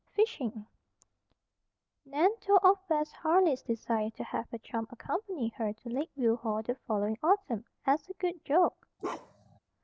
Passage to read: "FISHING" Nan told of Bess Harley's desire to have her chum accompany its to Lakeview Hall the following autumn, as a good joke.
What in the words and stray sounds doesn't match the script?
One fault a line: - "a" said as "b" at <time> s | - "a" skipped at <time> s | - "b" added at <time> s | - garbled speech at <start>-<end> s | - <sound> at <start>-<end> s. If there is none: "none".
- "its" said as "her" at 5.6 s
- bark at 9.0-9.6 s